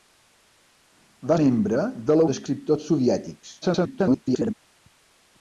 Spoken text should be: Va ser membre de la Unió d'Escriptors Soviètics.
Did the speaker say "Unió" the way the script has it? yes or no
no